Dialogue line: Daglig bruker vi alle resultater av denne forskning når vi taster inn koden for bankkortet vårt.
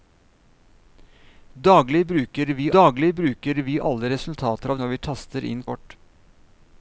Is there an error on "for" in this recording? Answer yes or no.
yes